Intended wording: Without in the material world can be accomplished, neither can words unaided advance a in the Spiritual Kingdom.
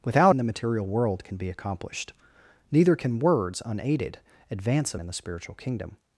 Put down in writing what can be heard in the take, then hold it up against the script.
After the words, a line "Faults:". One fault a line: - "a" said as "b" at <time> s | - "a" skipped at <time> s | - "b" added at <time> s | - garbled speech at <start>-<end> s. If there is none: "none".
Without in the material world can be accomplished, neither can words unaided advance a in the Spiritual Kingdom.
Faults:
none